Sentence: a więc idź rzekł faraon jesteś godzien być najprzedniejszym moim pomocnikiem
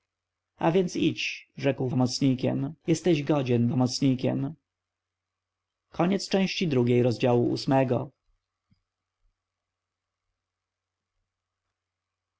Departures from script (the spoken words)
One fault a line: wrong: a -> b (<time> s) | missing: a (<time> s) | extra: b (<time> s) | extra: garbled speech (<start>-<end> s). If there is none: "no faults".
wrong: faraon -> pomocnikiem (1.9 s)
missing: być najprzedniejszym moim (3.7 s)